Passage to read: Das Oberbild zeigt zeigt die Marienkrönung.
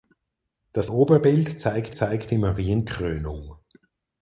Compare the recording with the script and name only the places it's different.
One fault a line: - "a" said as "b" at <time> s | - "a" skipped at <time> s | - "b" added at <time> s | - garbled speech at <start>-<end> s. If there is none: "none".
none